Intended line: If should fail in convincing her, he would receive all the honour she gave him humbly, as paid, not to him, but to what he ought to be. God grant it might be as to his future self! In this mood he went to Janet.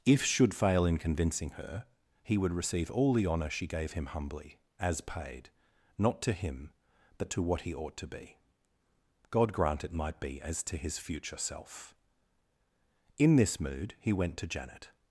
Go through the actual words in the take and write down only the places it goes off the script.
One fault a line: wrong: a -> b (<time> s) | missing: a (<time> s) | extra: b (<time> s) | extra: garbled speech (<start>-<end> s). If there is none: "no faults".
no faults